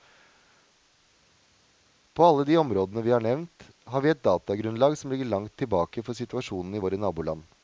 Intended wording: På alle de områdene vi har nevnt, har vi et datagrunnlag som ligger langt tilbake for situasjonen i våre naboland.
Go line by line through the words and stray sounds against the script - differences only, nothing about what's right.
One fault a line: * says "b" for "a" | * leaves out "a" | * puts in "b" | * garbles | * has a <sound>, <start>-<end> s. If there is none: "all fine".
all fine